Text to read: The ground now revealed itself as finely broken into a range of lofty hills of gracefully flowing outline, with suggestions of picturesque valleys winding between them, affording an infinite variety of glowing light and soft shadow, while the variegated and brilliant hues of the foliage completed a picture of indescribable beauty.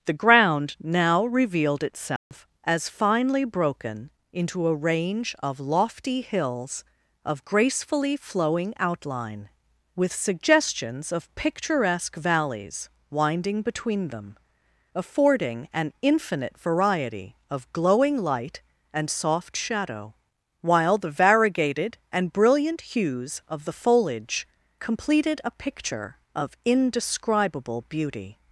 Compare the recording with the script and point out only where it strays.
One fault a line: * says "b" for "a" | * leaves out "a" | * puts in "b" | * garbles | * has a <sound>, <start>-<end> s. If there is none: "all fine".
* has a dropout, 2.2-2.3 s